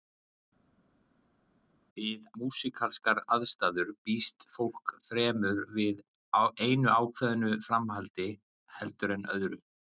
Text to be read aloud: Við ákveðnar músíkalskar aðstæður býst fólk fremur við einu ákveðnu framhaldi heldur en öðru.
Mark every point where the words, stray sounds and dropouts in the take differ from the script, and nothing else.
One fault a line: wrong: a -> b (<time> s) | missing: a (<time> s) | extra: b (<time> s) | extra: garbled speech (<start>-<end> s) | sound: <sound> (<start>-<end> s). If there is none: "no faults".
missing: ákveðnar (2.2 s)